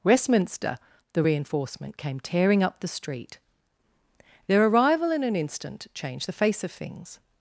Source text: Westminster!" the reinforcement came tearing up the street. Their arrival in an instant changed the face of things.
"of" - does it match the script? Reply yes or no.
yes